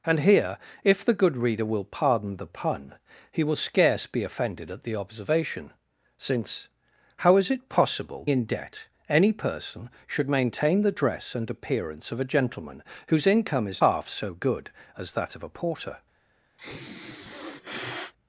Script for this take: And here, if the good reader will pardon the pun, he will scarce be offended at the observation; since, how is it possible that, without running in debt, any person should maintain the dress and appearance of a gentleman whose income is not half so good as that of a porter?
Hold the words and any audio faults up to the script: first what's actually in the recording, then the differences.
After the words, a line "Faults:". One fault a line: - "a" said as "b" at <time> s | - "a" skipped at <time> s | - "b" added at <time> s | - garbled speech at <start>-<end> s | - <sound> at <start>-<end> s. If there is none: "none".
And here, if the good reader will pardon the pun, he will scarce be offended at the observation; since, how is it possible in debt, any person should maintain the dress and appearance of a gentleman whose income is half so good as that of a porter?
Faults:
- "that without running" skipped at 8.2 s
- "not" skipped at 13.8 s
- sniff at 16.6-18.1 s